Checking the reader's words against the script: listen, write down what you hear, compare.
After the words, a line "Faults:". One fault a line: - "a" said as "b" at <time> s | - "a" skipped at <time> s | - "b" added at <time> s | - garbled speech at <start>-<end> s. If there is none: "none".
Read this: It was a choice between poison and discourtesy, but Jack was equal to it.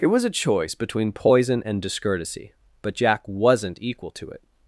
It was a choice between poison and discourtesy, but Jack wasn't equal to it.
Faults:
- "was" said as "wasn't" at 3.3 s